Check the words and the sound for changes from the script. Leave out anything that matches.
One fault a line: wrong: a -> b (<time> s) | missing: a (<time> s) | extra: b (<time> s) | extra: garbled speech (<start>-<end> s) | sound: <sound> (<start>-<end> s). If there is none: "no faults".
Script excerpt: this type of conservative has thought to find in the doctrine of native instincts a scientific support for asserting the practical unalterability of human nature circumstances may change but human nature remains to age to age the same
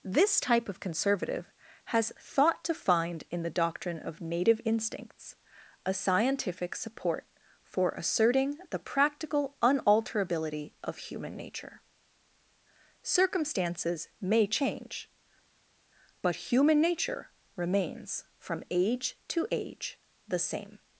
wrong: to -> from (18.4 s)